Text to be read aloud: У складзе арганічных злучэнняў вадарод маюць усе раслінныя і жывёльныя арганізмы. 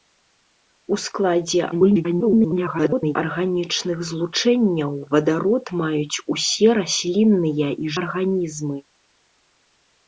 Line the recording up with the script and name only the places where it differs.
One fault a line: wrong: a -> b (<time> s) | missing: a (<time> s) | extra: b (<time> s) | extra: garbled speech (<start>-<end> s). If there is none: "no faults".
extra: garbled speech (1.7-3.2 s)
missing: жывёльныя (7.9 s)